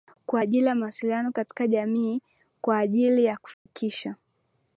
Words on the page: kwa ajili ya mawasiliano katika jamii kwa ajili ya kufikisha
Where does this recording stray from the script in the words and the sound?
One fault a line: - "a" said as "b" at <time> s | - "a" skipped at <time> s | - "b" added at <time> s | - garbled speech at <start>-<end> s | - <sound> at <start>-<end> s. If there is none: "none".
- dropout at 3.5-3.7 s